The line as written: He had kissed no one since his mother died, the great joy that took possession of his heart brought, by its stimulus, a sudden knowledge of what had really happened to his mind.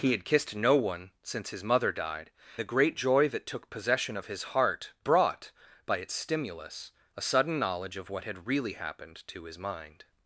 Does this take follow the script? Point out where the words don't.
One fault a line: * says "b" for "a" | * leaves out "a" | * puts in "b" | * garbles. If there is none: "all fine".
all fine